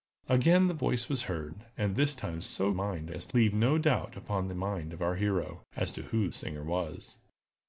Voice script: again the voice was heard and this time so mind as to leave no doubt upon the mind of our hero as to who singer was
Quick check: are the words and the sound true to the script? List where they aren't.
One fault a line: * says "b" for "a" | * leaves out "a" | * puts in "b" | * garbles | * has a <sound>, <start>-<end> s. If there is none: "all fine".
all fine